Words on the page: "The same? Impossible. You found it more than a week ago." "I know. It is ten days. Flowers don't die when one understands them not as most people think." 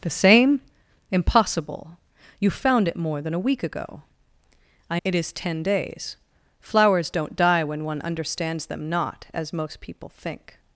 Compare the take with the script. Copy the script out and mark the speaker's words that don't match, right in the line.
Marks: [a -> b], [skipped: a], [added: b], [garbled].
"The same? Impossible. You found it more than a week ago." "I [skipped: know.] It is ten days. Flowers don't die when one understands them not as most people think."